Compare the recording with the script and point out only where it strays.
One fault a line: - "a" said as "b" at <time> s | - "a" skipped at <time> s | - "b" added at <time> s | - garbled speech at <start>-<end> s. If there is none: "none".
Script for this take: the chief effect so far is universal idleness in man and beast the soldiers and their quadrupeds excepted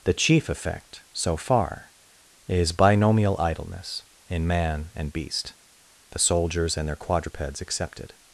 - "universal" said as "binomial" at 2.7 s